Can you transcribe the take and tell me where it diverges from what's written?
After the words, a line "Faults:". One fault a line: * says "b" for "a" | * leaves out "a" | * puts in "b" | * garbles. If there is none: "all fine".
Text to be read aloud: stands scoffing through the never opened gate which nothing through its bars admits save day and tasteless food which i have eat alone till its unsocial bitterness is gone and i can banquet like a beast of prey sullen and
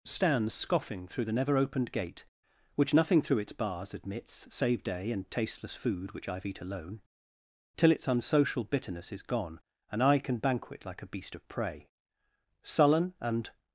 stands scoffing through the never opened gate which nothing through its bars admits save day and tasteless food which i have eat alone till its unsocial bitterness is gone and i can banquet like a beast of prey sullen and
Faults:
all fine